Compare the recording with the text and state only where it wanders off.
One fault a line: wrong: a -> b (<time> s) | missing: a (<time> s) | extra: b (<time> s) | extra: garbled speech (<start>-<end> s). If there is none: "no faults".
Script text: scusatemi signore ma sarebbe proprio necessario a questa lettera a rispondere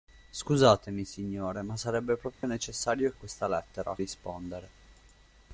no faults